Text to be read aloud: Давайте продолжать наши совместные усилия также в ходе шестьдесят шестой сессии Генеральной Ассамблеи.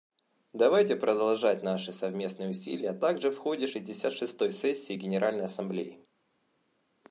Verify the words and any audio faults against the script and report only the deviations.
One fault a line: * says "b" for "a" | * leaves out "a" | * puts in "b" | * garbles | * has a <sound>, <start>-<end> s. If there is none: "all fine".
all fine